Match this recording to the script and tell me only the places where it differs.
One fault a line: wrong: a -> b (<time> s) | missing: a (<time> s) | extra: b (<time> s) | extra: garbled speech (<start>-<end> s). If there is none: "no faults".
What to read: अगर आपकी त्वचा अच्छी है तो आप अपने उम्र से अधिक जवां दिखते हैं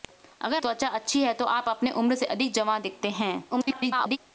missing: आपकी (0.6 s)
extra: garbled speech (3.5-4.2 s)